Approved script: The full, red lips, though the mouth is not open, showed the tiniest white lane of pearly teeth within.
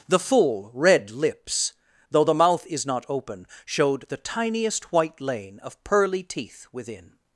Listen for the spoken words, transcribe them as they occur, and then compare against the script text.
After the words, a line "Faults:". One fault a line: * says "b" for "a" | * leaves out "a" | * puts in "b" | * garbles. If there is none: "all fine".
The full, red lips, though the mouth is not open, showed the tiniest white lane of pearly teeth within.
Faults:
all fine